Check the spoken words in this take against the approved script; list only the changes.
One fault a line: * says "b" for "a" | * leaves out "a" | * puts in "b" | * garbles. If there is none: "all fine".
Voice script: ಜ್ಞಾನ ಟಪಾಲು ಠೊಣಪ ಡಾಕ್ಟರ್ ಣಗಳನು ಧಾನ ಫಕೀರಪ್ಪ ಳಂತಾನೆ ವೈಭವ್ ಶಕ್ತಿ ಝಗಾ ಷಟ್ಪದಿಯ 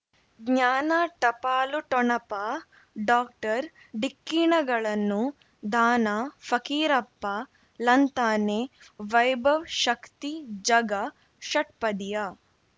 * puts in "ಢಿಕ್ಕಿ"